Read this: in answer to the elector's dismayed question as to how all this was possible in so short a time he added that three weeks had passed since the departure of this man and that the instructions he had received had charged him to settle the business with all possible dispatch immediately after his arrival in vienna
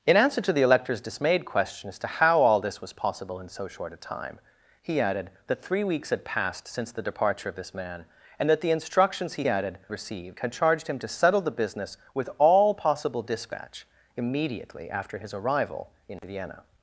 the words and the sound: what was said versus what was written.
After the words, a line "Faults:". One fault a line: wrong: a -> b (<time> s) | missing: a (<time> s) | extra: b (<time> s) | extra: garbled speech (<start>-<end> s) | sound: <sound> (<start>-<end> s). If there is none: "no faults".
in answer to the elector's dismayed question as to how all this was possible in so short a time he added that three weeks had passed since the departure of this man and that the instructions he added received had charged him to settle the business with all possible dispatch immediately after his arrival in vienna
Faults:
wrong: had -> added (9.5 s)